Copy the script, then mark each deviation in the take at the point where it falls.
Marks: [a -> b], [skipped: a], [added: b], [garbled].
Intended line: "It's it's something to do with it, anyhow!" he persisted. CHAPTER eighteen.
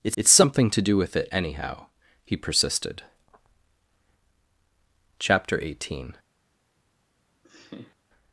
"It's it's something to do with it, anyhow!" he persisted. CHAPTER eighteen.